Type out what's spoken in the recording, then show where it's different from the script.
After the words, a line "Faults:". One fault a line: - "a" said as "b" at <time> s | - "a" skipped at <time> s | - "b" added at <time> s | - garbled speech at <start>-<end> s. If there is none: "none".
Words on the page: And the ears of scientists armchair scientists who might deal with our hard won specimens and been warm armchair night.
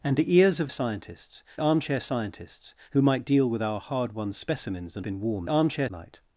And the ears of scientists armchair scientists who might deal with our hard won specimens and been warm armchair night.
Faults:
none